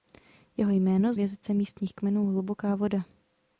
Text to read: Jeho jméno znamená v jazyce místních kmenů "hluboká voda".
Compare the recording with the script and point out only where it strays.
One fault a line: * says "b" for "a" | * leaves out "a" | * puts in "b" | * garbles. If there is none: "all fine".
* leaves out "znamená"